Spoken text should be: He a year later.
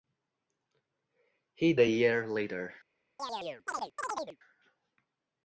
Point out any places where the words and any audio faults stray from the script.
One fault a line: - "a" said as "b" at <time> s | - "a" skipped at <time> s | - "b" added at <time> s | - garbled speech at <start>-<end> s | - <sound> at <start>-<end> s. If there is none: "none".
- chirp at 3.2-4.4 s